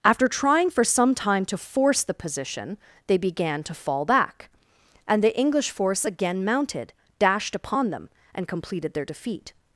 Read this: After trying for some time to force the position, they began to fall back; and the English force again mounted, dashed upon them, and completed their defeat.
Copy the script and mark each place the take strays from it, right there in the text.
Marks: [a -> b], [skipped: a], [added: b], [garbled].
After trying for some time to force the position, they began to fall back; and the English force again mounted, dashed upon them, and completed their defeat.